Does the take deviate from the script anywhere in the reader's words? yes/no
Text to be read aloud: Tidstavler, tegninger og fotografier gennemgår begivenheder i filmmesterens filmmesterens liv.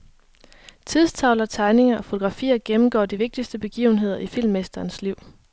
yes